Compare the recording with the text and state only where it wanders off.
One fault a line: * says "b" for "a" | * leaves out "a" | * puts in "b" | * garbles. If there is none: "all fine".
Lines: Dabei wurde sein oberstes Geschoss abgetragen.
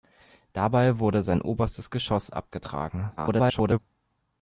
* garbles